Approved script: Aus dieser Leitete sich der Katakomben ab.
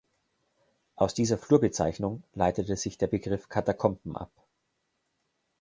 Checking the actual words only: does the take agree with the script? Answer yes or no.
no